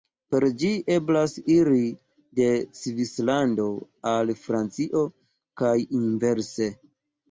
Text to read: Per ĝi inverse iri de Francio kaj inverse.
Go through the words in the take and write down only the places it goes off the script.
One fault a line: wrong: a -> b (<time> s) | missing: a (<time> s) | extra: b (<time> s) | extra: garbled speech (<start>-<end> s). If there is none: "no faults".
wrong: inverse -> eblas (0.9 s)
extra: Svislando al (2.8 s)